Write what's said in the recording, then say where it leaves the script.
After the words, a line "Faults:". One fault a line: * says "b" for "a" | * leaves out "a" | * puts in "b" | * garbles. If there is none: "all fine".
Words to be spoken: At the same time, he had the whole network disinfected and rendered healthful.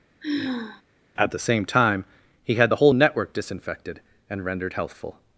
At the same time, he had the whole network disinfected and rendered healthful.
Faults:
all fine